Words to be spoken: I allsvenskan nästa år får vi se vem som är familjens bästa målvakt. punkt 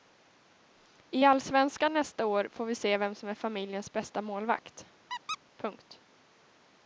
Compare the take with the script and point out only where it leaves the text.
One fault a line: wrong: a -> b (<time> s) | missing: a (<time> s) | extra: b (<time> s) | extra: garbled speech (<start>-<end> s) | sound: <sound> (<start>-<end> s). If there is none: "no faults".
sound: squeak (5.1-5.4 s)